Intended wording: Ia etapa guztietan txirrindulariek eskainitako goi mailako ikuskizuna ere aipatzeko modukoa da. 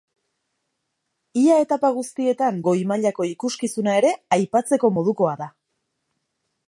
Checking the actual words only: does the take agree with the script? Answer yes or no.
no